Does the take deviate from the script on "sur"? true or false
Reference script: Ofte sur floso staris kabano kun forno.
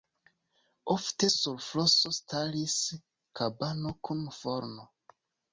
false